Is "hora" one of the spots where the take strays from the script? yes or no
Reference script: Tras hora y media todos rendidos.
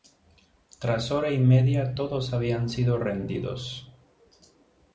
no